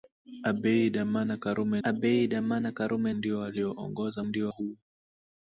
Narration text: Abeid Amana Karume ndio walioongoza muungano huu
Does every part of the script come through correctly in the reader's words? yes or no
no